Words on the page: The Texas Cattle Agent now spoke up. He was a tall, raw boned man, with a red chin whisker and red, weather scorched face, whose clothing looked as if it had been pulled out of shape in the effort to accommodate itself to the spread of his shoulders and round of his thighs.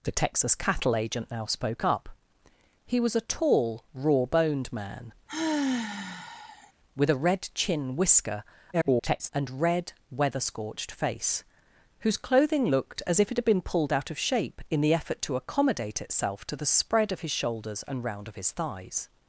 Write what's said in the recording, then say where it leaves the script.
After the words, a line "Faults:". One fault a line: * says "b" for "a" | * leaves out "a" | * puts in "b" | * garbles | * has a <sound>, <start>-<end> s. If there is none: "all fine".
The Texas Cattle Agent now spoke up. He was a tall, raw boned man, with a red chin whisker [garbled] and red, weather scorched face, whose clothing looked as if it had been pulled out of shape in the effort to accommodate itself to the spread of his shoulders and round of his thighs.
Faults:
* has a sigh, 5.3-6.7 s
* garbles